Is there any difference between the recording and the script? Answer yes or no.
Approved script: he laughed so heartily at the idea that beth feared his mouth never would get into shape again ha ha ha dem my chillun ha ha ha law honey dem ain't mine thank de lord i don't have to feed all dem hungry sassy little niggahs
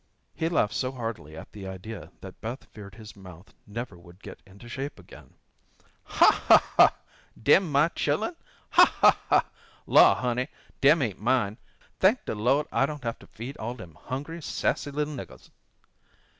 no